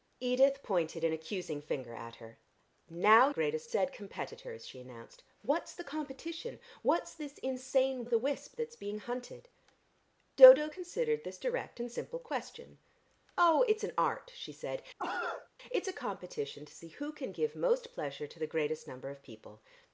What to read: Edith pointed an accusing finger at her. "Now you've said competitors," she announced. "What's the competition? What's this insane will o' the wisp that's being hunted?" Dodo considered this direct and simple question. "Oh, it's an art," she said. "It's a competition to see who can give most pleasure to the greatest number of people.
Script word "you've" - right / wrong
wrong